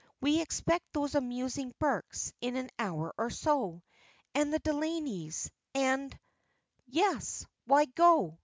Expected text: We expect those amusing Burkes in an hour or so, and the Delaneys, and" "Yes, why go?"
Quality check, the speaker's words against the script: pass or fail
pass